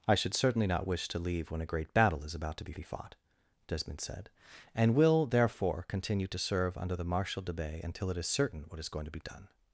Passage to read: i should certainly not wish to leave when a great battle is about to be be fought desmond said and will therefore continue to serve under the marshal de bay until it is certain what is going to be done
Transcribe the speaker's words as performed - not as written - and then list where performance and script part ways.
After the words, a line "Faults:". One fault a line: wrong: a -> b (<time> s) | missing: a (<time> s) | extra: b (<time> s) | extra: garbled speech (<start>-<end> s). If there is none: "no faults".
i should certainly not wish to leave when a great battle is about to be be fought desmond said and will therefore continue to serve under the marshal de bay until it is certain what is going to be done
Faults:
no faults